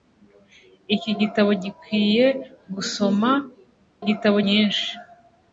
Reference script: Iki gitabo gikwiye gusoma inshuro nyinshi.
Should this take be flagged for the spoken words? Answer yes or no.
yes